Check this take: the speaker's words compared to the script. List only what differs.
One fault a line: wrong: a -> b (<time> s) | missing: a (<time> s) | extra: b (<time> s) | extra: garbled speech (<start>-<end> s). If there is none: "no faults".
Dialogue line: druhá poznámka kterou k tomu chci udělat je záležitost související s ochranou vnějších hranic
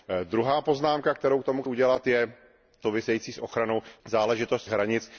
missing: chci (1.6 s)
missing: záležitost (2.3 s)
wrong: vnějších -> záležitost (4.1 s)